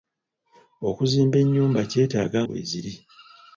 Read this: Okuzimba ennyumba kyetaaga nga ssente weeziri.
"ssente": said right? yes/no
no